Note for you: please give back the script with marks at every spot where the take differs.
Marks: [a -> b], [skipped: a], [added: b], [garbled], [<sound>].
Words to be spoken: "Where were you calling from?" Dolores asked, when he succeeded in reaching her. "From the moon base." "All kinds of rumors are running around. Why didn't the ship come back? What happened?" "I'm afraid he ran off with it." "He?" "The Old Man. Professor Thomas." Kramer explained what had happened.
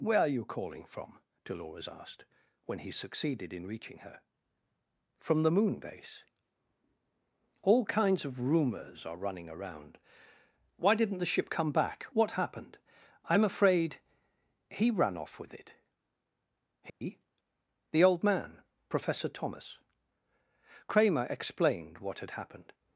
"Where [were -> are] you calling from?" Dolores asked, when he succeeded in reaching her. "From the moon base." "All kinds of rumors are running around. Why didn't the ship come back? What happened?" "I'm afraid he ran off with it." "He?" [dropout] "The Old Man. Professor Thomas." Kramer explained what had happened.